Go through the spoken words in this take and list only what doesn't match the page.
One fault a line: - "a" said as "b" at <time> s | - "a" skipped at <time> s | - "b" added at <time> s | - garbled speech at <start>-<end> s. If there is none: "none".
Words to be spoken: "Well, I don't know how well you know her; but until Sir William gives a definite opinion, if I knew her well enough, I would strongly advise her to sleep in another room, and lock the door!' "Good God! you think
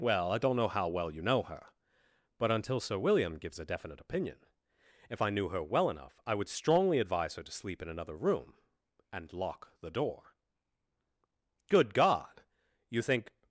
none